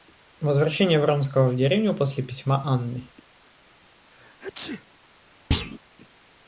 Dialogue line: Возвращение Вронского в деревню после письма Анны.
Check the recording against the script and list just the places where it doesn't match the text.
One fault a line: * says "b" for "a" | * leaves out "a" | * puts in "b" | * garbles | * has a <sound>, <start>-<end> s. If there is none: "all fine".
* has a sneeze, 4.1-4.9 s
* has a thud, 5.5-5.8 s